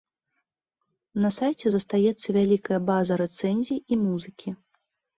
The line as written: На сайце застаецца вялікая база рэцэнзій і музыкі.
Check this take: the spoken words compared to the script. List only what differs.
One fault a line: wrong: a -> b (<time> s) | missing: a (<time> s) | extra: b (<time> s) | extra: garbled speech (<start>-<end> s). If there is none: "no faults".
no faults